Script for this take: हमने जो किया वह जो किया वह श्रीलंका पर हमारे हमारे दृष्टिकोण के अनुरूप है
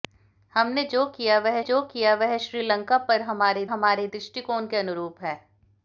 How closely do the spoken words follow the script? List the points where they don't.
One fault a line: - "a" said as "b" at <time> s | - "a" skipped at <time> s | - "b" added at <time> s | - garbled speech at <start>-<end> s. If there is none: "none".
none